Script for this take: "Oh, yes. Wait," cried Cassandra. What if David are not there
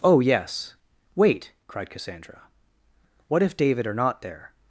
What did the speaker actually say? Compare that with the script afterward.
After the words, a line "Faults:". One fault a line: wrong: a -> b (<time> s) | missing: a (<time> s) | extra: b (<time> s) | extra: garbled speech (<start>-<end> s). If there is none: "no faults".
"Oh, yes. Wait," cried Cassandra. What if David are not there
Faults:
no faults